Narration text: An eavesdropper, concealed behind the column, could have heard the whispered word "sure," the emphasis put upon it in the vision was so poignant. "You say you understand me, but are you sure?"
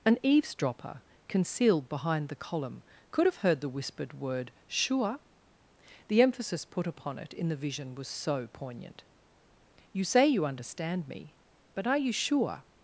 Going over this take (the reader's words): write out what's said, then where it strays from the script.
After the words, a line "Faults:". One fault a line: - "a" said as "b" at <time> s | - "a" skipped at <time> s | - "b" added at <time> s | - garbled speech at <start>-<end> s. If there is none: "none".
An eavesdropper, concealed behind the column, could have heard the whispered word "sure," the emphasis put upon it in the vision was so poignant. "You say you understand me, but are you sure?"
Faults:
none